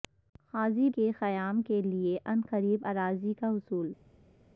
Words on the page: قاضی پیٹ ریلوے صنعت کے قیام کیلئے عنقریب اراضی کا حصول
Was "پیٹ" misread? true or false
true